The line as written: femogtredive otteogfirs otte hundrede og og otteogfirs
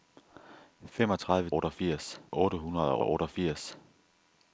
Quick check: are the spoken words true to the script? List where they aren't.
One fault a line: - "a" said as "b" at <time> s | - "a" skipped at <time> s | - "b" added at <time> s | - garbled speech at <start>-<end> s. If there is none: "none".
none